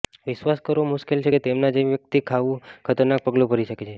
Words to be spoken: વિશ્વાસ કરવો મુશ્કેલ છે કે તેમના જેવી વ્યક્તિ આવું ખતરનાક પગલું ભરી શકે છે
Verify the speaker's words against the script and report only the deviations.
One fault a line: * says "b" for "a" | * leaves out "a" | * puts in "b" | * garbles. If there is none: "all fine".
all fine